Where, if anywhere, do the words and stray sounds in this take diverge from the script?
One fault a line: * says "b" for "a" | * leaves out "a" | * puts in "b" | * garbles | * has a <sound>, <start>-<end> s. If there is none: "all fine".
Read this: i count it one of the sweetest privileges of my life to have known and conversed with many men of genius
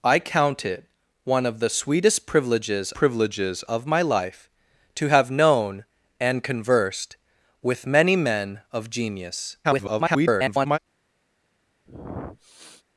* puts in "privileges"
* garbles
* has a sniff, 11.8-12.8 s